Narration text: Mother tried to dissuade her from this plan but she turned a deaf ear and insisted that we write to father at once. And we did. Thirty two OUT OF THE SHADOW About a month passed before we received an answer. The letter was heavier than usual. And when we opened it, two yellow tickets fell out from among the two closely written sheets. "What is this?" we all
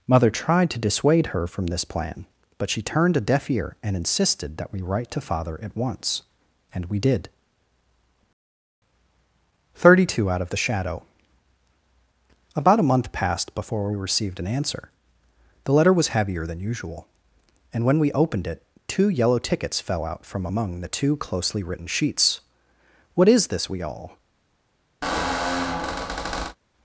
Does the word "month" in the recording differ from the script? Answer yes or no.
no